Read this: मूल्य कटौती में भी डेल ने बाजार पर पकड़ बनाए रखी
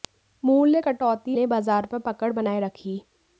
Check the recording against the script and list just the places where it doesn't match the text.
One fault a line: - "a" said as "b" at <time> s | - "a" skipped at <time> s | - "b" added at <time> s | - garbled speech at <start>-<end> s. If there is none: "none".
- "में भी डेल" skipped at 1.3 s